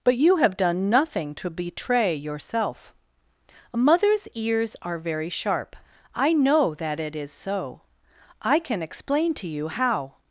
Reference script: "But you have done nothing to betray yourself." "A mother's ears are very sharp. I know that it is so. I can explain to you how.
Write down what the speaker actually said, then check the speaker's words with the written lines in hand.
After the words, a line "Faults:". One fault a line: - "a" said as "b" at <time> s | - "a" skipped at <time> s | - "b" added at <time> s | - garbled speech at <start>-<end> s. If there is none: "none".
"But you have done nothing to betray yourself." "A mother's ears are very sharp. I know that it is so. I can explain to you how.
Faults:
none